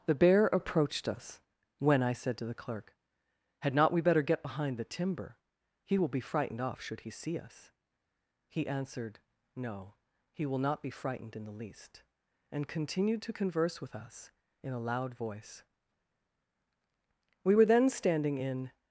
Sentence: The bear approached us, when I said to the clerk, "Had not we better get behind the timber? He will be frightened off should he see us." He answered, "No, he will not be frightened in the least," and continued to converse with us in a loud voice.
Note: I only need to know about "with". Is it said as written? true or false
true